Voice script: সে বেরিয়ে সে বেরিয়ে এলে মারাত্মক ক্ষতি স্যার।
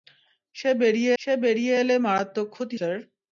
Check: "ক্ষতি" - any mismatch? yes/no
no